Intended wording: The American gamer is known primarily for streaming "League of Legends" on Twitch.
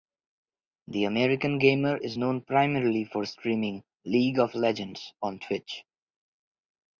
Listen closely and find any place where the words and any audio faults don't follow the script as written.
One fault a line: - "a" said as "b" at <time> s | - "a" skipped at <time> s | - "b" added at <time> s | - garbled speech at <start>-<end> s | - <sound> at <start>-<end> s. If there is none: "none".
none